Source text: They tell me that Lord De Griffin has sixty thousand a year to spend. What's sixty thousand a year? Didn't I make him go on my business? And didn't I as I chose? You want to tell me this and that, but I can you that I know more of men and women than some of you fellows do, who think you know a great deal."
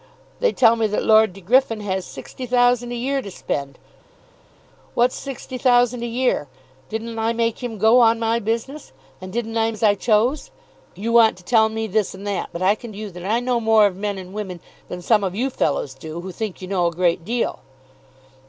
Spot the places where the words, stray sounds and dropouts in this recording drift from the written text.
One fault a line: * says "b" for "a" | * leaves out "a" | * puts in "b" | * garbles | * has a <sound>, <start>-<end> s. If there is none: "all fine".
all fine